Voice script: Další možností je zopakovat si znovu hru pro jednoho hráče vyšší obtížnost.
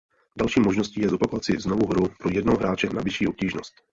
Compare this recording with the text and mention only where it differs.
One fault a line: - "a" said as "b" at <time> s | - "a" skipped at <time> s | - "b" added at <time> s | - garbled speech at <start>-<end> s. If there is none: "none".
- "na" added at 2.9 s